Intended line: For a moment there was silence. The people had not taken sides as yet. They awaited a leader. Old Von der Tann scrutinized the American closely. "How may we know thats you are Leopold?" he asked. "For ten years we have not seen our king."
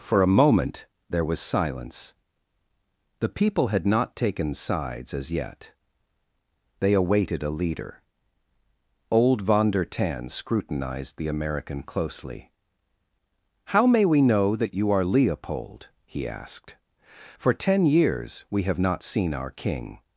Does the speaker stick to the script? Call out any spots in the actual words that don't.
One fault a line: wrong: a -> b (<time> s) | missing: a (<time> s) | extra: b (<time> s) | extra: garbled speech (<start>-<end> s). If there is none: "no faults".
wrong: thats -> that (14.6 s)